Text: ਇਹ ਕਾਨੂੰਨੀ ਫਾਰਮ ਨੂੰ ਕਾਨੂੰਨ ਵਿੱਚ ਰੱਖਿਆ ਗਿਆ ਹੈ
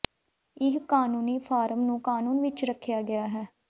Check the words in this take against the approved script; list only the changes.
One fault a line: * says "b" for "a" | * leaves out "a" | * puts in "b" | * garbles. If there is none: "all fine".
all fine